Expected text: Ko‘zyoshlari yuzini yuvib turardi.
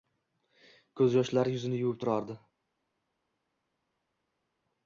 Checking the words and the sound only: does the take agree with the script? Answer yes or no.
yes